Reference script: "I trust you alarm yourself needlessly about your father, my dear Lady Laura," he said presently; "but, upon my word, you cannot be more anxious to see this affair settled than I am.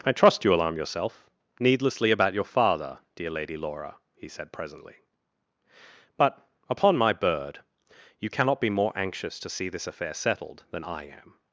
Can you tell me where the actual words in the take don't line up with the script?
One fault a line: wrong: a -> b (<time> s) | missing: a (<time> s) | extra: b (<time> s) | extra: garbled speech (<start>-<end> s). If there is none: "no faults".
missing: my (3.0 s)
wrong: word -> bird (7.1 s)